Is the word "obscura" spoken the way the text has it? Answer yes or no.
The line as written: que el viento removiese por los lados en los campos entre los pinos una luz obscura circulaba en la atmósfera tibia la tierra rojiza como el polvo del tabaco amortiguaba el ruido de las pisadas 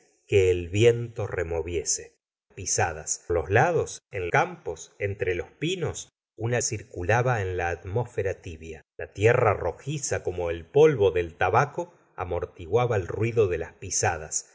no